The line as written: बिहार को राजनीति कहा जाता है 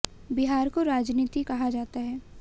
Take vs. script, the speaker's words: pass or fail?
pass